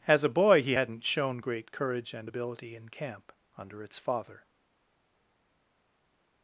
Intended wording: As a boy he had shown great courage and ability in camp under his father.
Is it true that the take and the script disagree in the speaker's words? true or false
true